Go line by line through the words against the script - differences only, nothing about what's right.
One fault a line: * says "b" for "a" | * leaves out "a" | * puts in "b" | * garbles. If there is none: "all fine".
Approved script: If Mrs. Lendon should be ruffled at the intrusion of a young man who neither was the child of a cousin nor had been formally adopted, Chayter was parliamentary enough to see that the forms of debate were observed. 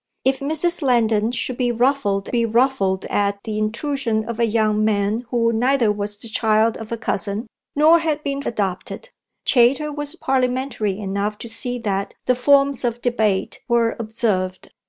* puts in "be ruffled"
* leaves out "formally"